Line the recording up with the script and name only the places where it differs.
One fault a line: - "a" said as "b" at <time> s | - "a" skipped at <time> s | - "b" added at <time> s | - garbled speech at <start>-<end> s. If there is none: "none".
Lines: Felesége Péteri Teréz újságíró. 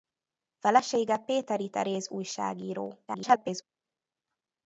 - garbled speech at 3.1-3.6 s